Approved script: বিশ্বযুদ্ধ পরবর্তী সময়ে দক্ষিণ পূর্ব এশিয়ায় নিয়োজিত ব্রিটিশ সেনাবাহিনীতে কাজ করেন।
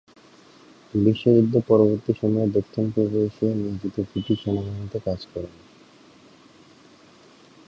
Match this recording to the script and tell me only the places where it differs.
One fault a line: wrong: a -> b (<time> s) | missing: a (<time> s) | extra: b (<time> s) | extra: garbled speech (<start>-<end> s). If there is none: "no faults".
no faults